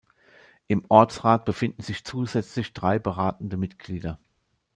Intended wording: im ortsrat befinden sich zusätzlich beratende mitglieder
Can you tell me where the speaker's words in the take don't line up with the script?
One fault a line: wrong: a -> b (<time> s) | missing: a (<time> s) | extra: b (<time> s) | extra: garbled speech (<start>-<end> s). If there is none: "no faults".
extra: drei (2.7 s)